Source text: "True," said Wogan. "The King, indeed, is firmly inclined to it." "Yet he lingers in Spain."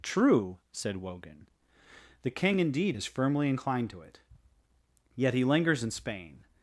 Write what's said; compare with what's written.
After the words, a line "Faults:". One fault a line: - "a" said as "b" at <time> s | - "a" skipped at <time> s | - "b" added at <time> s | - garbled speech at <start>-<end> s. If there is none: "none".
"True," said Wogan. "The King, indeed, is firmly inclined to it." "Yet he lingers in Spain."
Faults:
none